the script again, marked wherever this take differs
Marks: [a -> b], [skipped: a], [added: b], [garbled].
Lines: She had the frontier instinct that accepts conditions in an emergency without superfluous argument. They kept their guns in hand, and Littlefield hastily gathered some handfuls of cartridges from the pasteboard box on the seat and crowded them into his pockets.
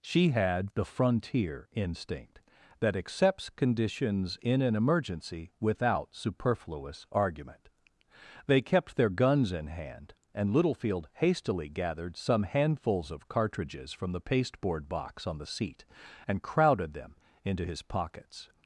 She had the frontier instinct that accepts conditions in an emergency without superfluous argument. They kept their guns in hand, and Littlefield hastily gathered some handfuls of cartridges from the pasteboard box on the seat and crowded them into his pockets.